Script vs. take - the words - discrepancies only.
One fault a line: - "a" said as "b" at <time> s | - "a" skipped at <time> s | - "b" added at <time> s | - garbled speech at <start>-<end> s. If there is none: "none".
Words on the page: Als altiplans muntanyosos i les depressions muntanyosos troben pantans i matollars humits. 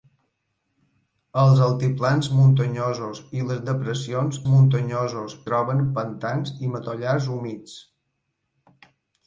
none